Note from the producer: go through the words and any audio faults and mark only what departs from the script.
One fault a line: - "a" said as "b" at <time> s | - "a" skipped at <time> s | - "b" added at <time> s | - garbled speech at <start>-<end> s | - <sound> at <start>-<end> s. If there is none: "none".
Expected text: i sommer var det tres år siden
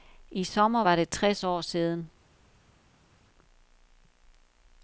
none